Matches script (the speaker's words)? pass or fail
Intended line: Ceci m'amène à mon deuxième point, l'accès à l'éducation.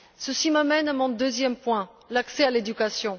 pass